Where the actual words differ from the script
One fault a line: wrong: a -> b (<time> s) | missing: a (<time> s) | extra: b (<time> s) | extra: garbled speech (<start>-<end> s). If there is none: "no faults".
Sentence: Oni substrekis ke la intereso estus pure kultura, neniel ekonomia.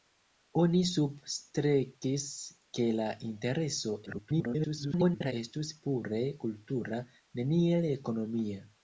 extra: garbled speech (4.1-5.3 s)